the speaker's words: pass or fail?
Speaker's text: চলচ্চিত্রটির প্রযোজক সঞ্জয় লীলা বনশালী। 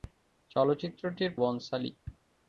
fail